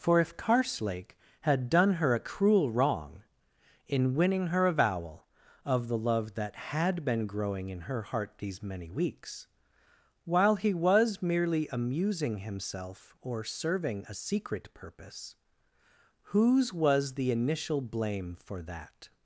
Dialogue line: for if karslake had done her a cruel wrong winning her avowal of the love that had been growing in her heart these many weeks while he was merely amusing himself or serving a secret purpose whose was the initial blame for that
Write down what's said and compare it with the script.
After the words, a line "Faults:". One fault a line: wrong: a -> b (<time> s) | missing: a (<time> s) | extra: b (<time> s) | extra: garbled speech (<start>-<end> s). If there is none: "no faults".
for if karslake had done her a cruel wrong in winning her avowal of the love that had been growing in her heart these many weeks while he was merely amusing himself or serving a secret purpose whose was the initial blame for that
Faults:
extra: in (3.9 s)